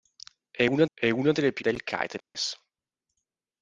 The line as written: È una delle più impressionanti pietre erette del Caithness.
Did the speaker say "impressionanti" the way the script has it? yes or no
no